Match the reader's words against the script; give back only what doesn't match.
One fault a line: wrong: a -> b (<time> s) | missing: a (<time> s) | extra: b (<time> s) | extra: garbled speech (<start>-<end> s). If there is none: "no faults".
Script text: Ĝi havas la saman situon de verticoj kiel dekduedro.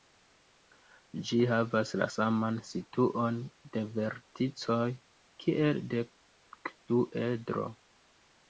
no faults